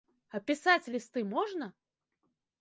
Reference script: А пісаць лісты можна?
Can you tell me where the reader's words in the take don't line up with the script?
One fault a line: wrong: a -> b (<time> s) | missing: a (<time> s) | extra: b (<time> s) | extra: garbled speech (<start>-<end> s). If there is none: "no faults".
no faults